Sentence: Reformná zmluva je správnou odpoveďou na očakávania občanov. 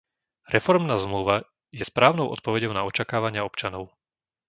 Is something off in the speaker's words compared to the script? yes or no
no